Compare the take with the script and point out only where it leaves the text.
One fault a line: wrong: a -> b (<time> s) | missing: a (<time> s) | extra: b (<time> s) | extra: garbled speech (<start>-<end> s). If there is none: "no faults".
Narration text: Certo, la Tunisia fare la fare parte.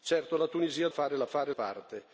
no faults